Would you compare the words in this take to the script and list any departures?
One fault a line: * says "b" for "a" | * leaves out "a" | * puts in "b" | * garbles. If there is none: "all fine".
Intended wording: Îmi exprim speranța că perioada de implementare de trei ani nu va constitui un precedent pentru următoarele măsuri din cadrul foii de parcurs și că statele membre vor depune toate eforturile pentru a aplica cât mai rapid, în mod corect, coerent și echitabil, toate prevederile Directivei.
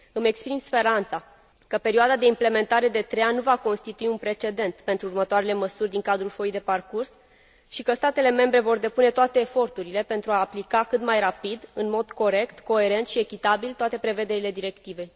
all fine